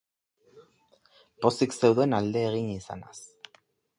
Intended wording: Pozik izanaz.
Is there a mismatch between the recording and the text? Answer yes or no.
yes